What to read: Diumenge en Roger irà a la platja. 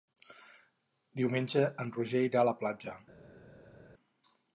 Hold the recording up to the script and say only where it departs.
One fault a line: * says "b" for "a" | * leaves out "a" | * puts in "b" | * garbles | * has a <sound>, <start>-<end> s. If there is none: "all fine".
all fine